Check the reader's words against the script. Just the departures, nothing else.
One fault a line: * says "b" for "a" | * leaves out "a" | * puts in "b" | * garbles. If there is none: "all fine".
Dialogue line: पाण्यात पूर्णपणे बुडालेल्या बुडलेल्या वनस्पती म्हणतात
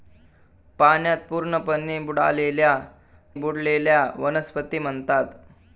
all fine